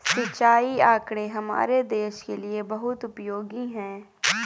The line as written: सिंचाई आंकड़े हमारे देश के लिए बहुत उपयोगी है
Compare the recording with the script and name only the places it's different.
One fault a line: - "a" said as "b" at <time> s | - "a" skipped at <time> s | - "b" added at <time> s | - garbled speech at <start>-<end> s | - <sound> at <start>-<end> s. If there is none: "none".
none